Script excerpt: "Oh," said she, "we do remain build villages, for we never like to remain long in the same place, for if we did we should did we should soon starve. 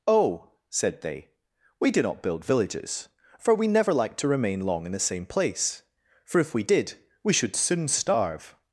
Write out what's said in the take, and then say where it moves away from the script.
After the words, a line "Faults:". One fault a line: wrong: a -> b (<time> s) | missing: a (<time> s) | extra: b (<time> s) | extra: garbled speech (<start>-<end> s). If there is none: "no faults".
"Oh," said they, "we do not build villages, for we never like to remain long in the same place, for if we did we should soon starve.
Faults:
wrong: she -> they (1.0 s)
wrong: remain -> not (2.0 s)
missing: did we should (7.6 s)